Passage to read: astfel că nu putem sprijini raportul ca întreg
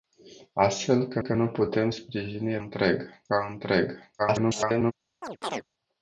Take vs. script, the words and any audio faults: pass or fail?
fail